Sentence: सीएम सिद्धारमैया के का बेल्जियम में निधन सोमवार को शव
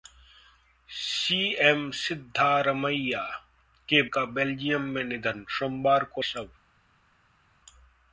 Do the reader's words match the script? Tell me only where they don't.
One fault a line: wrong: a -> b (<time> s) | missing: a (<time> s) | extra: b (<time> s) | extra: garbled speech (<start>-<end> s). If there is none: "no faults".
no faults